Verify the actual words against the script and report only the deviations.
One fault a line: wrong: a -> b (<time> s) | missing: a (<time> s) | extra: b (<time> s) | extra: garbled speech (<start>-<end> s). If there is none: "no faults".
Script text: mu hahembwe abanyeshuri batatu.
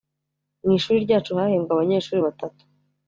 extra: ishuri ryacu (0.8 s)